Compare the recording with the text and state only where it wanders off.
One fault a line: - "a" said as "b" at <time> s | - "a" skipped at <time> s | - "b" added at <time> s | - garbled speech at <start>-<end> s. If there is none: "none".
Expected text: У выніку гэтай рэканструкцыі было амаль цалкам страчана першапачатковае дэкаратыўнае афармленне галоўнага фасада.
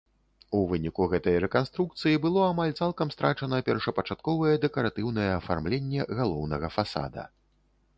none